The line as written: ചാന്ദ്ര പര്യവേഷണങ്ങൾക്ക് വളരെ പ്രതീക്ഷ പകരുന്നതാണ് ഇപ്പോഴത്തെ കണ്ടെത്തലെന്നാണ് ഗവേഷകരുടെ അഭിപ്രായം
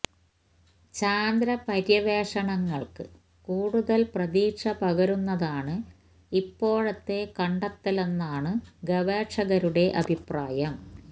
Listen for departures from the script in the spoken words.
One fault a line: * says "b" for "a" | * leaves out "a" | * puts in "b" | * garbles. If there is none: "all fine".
* says "കൂടുതൽ" for "വളരെ"